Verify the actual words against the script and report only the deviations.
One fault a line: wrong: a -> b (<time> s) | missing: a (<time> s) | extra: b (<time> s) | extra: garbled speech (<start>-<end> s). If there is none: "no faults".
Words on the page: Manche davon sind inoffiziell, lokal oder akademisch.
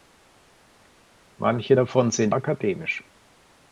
missing: inoffiziell lokal oder (2.3 s)